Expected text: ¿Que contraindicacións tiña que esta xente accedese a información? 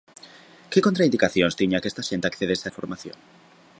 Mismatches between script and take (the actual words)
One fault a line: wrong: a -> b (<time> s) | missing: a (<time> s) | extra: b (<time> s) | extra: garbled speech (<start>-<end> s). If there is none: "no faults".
no faults